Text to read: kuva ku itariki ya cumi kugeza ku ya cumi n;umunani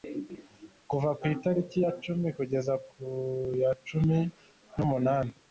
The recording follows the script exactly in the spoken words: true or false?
true